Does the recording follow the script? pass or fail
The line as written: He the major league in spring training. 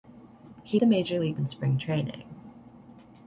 pass